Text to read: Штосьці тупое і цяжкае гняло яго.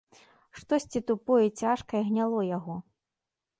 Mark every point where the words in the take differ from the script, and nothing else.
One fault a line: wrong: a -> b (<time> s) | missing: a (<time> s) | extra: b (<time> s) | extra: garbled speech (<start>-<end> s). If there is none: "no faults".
no faults